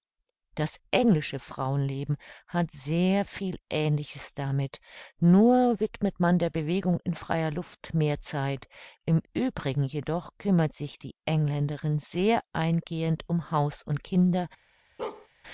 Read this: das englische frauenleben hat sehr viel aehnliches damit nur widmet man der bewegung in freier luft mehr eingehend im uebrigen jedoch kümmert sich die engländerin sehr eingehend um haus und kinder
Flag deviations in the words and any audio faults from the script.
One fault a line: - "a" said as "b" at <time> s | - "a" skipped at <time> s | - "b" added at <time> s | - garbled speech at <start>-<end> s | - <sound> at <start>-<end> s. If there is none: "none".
- "eingehend" said as "zeit" at 8.2 s
- bark at 15.0-15.3 s